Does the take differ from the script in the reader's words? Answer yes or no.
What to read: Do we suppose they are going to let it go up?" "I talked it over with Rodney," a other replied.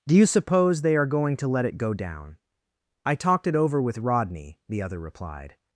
yes